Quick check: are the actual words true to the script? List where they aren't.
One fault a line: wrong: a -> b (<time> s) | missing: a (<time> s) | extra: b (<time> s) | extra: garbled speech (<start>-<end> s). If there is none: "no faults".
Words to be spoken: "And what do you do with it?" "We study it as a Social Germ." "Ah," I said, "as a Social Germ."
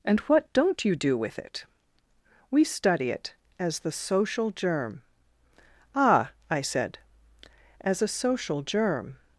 wrong: do -> don't (0.5 s)
wrong: a -> the (3.8 s)